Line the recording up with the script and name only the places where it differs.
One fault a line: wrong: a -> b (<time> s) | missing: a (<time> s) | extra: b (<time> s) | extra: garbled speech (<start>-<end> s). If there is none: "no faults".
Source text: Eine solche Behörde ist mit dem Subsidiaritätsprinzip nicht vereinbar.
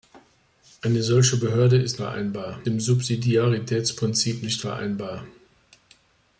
wrong: mit -> vereinbar (1.9 s)